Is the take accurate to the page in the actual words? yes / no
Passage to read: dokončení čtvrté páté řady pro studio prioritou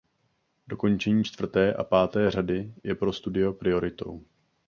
no